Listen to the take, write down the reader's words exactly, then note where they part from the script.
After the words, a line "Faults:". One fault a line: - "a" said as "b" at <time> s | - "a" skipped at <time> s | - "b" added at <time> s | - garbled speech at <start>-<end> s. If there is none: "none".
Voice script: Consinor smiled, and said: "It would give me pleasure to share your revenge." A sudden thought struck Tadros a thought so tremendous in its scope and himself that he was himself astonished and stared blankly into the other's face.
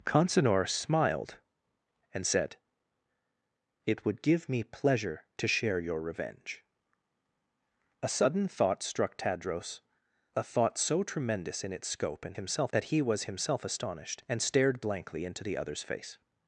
Consinor smiled, and said: "It would give me pleasure to share your revenge." A sudden thought struck Tadros a thought so tremendous in its scope and himself that he was himself astonished and stared blankly into the other's face.
Faults:
none